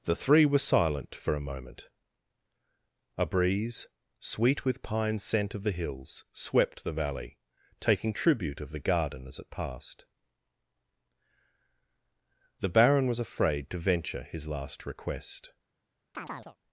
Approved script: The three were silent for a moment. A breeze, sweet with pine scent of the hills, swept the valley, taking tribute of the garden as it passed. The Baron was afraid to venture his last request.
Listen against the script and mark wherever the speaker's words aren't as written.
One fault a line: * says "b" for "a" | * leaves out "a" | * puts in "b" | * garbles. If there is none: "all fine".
all fine